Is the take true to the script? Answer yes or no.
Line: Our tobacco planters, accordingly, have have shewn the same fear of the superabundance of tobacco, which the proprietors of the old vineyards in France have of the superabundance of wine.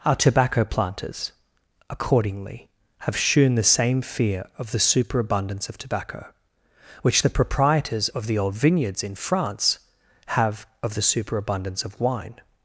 no